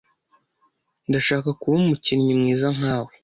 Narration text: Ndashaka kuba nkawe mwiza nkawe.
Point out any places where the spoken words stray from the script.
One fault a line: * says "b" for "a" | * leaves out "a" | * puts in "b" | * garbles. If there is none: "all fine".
* says "umukinnyi" for "nkawe"